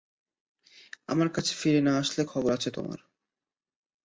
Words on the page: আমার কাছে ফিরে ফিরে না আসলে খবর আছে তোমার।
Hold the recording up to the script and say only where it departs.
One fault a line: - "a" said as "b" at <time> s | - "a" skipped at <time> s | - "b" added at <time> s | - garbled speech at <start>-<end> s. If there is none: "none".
- "ফিরে" skipped at 1.8 s